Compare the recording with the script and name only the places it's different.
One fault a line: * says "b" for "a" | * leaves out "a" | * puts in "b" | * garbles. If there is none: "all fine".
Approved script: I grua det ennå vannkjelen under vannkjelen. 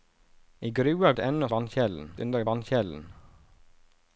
all fine